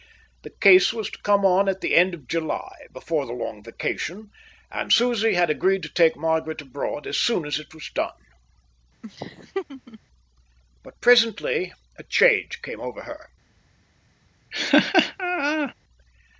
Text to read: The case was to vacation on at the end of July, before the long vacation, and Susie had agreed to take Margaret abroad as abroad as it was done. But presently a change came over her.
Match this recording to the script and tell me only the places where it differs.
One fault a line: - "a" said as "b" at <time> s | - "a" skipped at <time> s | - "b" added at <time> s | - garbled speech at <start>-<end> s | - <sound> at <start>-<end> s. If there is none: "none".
- "vacation" said as "come" at 1.2 s
- "abroad" said as "soon" at 7.2 s
- laugh at 9.0-10.0 s
- laugh at 14.5-15.7 s